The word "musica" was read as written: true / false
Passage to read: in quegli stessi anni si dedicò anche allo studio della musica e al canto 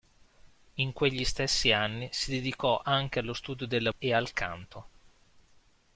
false